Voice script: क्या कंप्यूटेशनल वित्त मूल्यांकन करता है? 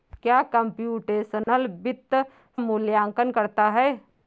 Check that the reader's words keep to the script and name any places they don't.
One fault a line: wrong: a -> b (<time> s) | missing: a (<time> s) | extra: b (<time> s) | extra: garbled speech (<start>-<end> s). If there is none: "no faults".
no faults